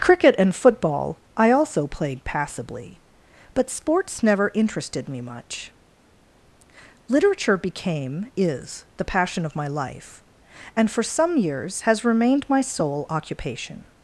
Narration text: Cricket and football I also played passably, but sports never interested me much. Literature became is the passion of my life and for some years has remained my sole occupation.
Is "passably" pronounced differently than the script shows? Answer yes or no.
no